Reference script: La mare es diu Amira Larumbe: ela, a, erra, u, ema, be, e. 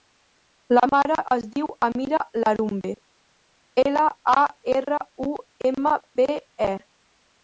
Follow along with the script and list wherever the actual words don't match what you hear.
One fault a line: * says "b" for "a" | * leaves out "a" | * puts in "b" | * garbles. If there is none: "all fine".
all fine